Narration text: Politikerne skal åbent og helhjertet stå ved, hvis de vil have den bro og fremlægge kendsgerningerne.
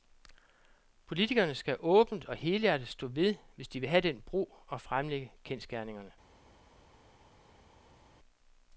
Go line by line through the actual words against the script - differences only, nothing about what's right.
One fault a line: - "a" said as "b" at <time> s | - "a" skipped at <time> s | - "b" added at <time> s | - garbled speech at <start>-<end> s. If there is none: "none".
none